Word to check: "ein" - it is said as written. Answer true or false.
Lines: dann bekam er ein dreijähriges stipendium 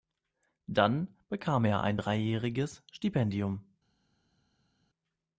true